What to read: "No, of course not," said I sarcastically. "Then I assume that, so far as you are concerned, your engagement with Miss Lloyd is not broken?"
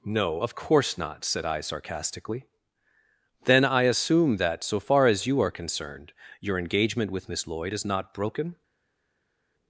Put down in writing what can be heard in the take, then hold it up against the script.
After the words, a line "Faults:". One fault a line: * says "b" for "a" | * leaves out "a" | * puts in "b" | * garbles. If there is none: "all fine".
"No, of course not," said I sarcastically. "Then I assume that, so far as you are concerned, your engagement with Miss Lloyd is not broken?"
Faults:
all fine